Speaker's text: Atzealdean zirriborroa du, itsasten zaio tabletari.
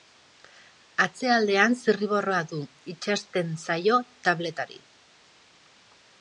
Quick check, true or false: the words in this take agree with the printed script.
true